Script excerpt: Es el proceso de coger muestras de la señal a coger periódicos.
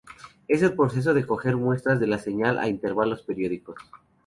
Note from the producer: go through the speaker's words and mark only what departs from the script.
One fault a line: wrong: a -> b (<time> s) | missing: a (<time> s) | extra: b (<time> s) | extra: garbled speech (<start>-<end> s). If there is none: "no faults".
wrong: coger -> intervalos (2.7 s)